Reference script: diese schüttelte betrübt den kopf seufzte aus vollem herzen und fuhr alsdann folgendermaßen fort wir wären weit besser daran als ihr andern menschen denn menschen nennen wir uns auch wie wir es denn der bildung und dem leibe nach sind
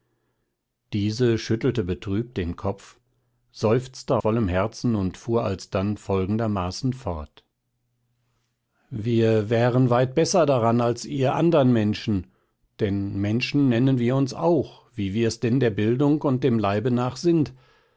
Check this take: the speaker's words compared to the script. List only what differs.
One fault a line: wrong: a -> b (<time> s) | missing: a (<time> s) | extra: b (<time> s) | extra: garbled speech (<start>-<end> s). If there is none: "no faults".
missing: aus (4.2 s)